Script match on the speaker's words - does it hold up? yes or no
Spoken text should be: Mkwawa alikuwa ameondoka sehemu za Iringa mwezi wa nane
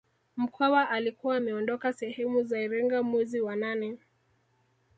yes